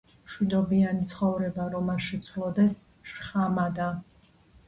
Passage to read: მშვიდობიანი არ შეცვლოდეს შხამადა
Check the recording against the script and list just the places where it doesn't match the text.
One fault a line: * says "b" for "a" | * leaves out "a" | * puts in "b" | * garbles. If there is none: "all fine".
* puts in "ცხოვრება რომ"